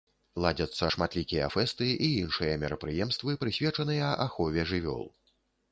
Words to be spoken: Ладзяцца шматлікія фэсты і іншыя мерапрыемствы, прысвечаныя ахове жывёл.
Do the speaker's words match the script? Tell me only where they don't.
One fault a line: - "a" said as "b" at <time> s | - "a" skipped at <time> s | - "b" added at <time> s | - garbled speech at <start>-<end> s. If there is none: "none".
none